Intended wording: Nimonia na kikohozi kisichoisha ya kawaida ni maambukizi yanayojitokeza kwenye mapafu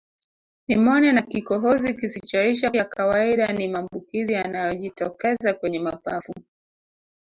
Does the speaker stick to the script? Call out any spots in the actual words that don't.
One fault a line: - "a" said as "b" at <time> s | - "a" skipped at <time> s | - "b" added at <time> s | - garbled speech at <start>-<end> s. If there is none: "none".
none